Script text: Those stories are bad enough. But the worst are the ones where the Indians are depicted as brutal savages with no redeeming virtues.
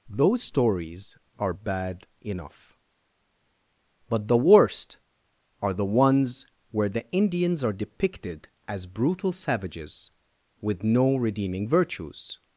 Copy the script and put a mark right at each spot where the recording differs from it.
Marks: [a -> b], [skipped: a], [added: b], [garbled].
Those stories are bad enough. But the worst are the ones where the Indians are depicted as brutal savages with no redeeming virtues.